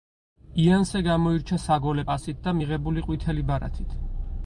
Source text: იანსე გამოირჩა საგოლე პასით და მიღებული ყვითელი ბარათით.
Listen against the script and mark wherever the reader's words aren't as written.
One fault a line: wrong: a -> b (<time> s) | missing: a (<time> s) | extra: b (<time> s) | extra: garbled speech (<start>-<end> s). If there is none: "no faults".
no faults